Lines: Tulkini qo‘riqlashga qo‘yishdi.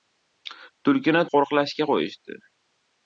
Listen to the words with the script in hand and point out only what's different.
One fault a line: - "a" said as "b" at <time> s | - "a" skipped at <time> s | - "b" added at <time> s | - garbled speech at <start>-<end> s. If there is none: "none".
none